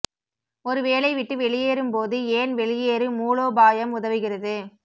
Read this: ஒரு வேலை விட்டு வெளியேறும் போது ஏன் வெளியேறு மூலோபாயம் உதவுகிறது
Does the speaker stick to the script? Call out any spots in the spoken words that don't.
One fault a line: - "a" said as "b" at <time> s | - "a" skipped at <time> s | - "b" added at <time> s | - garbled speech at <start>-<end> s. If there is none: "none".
none